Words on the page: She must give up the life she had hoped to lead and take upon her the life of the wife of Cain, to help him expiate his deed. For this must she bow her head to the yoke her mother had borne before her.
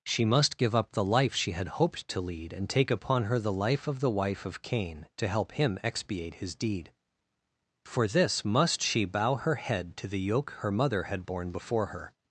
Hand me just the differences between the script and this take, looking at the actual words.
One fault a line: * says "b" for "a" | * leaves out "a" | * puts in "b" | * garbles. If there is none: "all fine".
all fine